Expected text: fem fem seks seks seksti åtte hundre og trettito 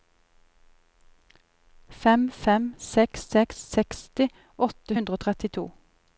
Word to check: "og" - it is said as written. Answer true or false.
true